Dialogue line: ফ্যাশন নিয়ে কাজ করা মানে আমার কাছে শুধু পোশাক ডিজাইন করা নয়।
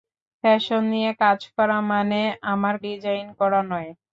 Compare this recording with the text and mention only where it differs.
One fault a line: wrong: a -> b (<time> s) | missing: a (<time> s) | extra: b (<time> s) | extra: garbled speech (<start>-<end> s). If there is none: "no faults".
missing: কাছে শুধু পোশাক (2.8 s)